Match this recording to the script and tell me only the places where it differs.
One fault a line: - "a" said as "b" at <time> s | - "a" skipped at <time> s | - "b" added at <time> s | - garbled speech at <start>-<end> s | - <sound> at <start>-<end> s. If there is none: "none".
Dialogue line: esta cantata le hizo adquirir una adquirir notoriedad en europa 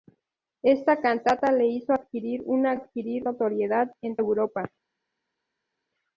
none